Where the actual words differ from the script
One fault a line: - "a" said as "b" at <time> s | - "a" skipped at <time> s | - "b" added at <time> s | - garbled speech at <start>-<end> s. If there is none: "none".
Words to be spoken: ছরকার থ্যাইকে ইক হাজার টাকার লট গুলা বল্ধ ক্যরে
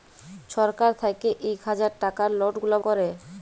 - "বল্ধ" skipped at 2.8 s